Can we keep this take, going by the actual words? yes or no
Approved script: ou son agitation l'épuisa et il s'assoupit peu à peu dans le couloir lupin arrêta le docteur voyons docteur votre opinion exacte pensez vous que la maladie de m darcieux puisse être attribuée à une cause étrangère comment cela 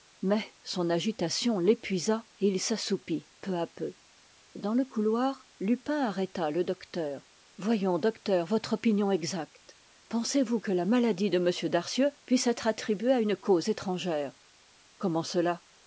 no